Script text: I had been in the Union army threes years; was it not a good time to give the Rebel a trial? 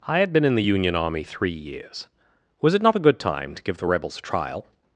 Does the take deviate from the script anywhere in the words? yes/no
yes